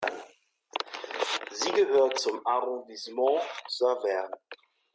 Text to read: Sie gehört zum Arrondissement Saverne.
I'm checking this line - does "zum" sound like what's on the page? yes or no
yes